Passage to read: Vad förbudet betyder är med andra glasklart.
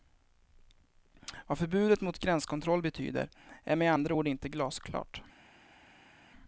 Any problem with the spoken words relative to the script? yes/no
yes